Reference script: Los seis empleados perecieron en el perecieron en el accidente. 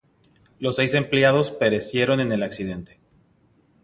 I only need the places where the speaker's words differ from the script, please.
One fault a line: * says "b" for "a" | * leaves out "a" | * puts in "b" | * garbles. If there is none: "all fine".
* leaves out "perecieron en el"